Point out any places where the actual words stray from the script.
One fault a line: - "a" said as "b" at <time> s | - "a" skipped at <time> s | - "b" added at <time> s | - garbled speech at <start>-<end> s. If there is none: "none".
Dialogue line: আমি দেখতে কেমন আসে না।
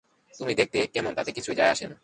- "আমি" said as "তুমি" at 0.3 s
- "তাতে কিছুই যায়" added at 1.1 s